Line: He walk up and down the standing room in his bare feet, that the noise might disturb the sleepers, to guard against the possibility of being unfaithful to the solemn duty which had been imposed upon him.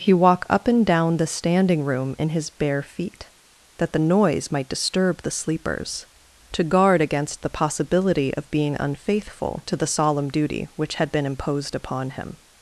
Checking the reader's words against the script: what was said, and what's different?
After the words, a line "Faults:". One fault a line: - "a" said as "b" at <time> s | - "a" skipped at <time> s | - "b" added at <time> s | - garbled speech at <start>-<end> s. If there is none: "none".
He walk up and down the standing room in his bare feet, that the noise might disturb the sleepers, to guard against the possibility of being unfaithful to the solemn duty which had been imposed upon him.
Faults:
none